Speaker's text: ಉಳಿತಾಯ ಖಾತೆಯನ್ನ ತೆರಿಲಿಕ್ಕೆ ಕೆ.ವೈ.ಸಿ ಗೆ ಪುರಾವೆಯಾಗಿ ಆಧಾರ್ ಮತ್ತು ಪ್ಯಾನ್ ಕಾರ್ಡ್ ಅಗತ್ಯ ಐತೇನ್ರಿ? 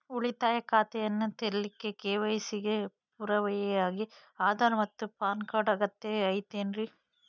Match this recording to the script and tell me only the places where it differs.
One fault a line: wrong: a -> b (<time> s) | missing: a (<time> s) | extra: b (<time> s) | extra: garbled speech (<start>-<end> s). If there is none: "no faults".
no faults